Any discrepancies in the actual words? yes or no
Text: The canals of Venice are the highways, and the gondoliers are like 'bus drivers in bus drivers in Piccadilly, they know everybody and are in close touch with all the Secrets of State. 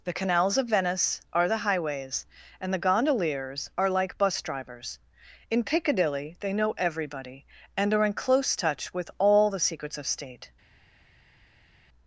yes